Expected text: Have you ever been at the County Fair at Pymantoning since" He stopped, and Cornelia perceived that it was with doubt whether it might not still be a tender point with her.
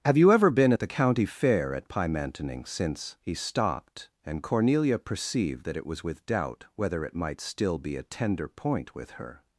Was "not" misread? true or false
true